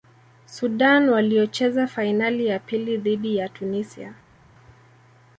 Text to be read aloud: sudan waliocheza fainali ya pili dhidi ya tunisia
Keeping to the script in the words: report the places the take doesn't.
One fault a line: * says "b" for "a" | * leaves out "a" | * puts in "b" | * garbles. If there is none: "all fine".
all fine